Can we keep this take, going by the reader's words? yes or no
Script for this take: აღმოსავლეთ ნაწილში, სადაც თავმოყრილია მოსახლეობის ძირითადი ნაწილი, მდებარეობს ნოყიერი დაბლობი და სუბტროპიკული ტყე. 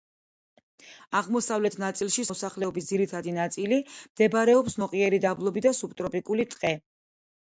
no